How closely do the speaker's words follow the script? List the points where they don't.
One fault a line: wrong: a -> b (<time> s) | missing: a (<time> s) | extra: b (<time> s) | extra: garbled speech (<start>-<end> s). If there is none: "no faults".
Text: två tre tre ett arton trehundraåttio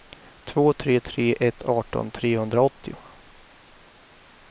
no faults